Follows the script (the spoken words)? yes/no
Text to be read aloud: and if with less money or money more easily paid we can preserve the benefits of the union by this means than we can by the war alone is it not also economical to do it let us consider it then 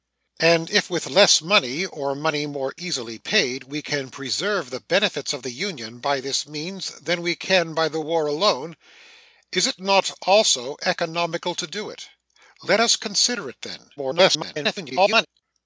no